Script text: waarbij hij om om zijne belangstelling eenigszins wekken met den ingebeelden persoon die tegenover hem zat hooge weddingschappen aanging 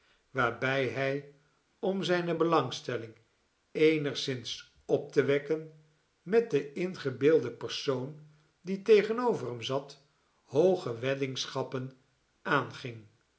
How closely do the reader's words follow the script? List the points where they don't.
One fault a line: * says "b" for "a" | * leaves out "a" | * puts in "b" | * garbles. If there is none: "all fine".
* leaves out "om"
* puts in "op te"